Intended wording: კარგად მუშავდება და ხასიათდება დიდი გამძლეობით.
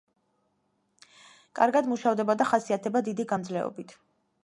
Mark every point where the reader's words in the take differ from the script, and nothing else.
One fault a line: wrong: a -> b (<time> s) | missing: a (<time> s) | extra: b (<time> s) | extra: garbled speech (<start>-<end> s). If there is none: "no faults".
no faults